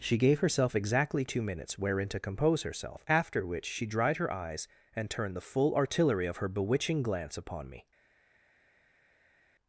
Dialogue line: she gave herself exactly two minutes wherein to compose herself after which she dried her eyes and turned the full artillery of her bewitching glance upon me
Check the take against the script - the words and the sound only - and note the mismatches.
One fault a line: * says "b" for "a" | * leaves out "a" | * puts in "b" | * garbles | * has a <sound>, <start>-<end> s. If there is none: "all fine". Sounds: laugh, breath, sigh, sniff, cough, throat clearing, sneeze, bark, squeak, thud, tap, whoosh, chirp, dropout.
all fine